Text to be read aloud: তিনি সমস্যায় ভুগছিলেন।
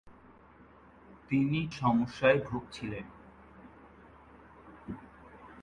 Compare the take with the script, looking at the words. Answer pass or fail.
pass